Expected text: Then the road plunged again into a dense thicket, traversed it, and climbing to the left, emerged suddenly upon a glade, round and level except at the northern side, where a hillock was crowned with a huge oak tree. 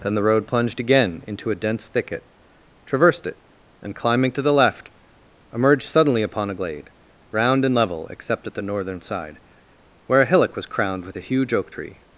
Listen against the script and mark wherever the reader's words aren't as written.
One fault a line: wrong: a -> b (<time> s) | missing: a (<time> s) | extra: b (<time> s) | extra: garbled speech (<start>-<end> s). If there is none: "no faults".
no faults